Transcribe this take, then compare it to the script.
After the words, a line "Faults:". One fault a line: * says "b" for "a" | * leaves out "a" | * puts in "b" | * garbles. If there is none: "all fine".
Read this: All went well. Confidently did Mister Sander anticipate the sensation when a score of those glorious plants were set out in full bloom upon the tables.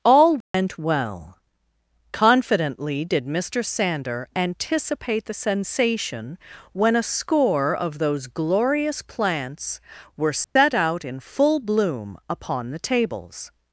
All went well. Confidently did Mister Sander anticipate the sensation when a score of those glorious plants were set out in full bloom upon the tables.
Faults:
all fine